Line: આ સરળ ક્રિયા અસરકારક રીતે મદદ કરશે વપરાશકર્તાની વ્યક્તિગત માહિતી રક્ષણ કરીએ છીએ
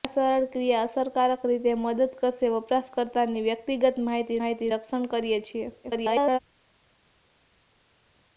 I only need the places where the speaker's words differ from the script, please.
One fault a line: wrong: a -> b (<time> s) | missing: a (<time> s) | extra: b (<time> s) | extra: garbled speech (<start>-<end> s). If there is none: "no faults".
extra: માહિતી (4.4 s)
extra: garbled speech (5.8-6.4 s)